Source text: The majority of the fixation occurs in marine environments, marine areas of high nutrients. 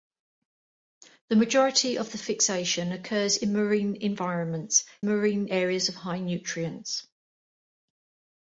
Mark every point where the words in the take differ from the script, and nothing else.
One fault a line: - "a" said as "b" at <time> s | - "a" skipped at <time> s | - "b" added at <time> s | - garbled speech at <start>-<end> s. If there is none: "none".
none